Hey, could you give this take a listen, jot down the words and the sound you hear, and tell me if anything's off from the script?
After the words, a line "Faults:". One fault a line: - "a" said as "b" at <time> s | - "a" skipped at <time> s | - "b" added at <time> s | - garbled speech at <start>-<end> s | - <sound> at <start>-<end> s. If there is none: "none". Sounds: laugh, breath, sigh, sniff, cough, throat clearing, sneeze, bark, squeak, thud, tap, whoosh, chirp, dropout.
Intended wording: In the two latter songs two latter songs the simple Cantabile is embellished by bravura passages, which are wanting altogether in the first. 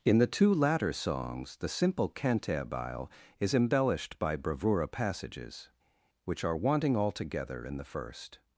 In the two latter songs the simple Cantabile is embellished by bravura passages, which are wanting altogether in the first.
Faults:
- "two latter songs" skipped at 1.6 s